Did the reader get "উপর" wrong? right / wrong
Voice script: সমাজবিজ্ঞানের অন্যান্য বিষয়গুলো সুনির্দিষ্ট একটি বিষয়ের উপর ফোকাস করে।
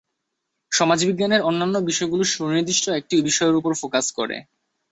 right